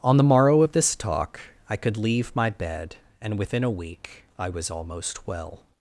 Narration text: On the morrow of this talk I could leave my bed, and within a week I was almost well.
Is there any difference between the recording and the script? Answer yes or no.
no